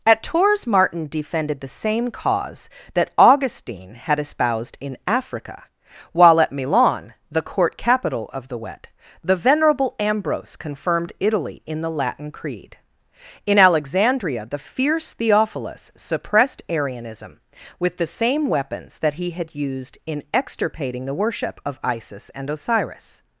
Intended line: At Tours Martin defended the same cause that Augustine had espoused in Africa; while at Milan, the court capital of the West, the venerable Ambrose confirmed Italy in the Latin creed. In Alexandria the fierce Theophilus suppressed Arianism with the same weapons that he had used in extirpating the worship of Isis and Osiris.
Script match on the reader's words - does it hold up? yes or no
no